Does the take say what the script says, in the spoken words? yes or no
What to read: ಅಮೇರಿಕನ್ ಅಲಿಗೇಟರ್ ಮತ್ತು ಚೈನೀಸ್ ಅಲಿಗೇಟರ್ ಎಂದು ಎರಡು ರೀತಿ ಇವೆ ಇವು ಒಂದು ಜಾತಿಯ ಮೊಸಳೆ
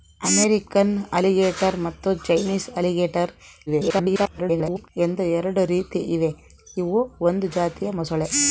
no